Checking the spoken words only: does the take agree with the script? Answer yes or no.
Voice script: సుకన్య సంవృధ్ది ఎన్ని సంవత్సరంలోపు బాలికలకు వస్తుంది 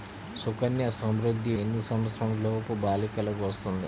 yes